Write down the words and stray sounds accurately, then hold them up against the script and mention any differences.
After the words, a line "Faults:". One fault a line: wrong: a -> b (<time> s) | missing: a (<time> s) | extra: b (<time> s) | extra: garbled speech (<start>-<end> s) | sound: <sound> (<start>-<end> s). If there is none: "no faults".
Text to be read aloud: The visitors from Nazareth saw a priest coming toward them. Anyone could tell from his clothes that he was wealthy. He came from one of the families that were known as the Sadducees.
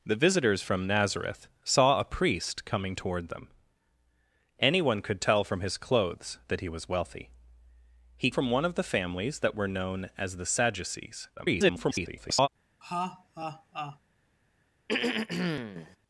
The visitors from Nazareth saw a priest coming toward them. Anyone could tell from his clothes that he was wealthy. He from one of the families that were known as the Sadducees. [garbled]
Faults:
missing: came (8.3 s)
extra: garbled speech (11.4-12.5 s)
sound: laugh (12.8-14.0 s)
sound: throat clearing (14.9-16.0 s)